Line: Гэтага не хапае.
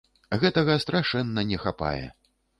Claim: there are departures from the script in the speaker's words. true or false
true